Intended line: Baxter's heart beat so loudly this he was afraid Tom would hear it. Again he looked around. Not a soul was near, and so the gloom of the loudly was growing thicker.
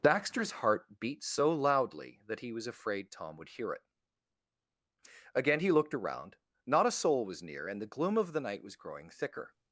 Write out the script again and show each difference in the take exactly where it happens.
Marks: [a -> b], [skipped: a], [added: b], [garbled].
Baxter's heart beat so loudly [this -> that] he was afraid Tom would hear it. Again he looked around. Not a soul was near, and [skipped: so] the gloom of the [loudly -> night] was growing thicker.